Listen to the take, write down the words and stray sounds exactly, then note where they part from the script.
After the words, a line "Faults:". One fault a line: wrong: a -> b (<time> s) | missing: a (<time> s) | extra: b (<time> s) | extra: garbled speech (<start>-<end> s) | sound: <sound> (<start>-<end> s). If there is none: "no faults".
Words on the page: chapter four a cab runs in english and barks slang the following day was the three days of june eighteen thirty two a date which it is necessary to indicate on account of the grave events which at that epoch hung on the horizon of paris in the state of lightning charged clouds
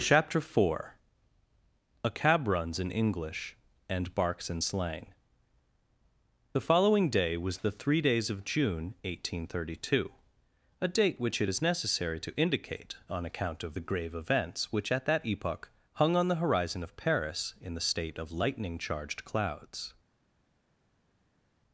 chapter four a cab runs in english and barks in slang the following day was the three days of june eighteen thirty two a date which it is necessary to indicate on account of the grave events which at that epoch hung on the horizon of paris in the state of lightning charged clouds
Faults:
extra: in (4.5 s)